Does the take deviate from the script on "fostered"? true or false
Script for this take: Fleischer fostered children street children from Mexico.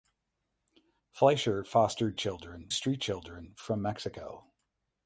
false